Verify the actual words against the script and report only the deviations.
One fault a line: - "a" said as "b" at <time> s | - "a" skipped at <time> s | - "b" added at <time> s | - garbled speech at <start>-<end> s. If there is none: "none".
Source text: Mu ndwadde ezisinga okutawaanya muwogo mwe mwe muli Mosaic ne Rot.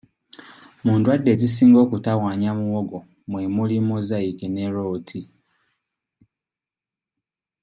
- "mwe" skipped at 3.4 s